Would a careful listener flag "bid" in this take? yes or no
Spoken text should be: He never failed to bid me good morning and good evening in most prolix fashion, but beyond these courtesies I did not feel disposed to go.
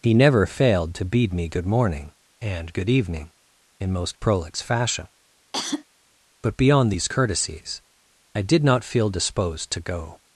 yes